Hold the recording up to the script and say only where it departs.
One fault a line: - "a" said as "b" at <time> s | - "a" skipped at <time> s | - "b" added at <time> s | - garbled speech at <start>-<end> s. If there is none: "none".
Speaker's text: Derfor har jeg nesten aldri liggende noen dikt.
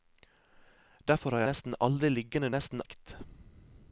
- "jeg" skipped at 1.4 s
- "noen" said as "nesten" at 2.6 s